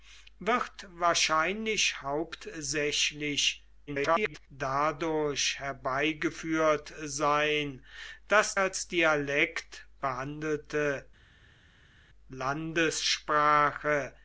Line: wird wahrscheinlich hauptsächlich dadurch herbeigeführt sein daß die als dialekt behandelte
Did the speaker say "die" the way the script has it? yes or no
no